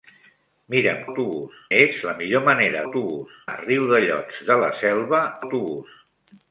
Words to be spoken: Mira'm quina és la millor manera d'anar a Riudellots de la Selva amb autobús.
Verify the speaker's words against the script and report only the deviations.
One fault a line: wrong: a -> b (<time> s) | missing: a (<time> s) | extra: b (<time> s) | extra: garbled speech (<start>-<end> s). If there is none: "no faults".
wrong: quina -> autobús (1.1 s)
wrong: d'anar -> autobús (2.8 s)
missing: amb (5.3 s)